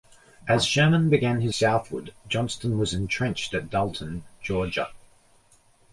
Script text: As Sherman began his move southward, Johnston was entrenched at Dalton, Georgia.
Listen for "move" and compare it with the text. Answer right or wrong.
wrong